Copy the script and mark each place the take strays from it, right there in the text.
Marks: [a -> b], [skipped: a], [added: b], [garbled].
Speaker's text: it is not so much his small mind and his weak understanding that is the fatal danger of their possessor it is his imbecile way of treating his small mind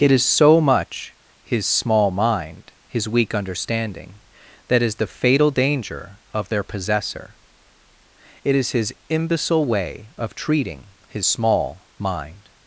it is [skipped: not] so much his small mind [skipped: and] his weak understanding that is the fatal danger of their possessor it is his imbecile way of treating his small mind